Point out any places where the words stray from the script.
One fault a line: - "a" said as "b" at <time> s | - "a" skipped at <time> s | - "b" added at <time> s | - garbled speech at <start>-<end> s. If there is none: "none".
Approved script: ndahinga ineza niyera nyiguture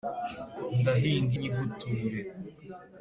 - "ineza niyera" skipped at 1.3 s